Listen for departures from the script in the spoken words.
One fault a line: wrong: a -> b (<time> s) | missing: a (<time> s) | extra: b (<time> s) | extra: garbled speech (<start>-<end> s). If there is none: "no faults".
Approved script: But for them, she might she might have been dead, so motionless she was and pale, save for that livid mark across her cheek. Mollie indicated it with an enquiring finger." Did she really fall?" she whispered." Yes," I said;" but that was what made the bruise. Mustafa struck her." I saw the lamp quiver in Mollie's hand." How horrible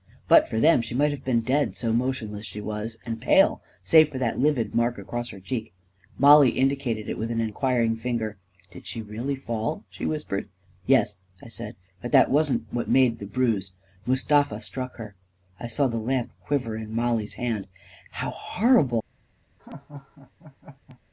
missing: she might (1.1 s)
wrong: was -> wasn't (12.3 s)